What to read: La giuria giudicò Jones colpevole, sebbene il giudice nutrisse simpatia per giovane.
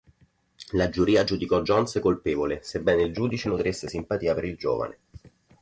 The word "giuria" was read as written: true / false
true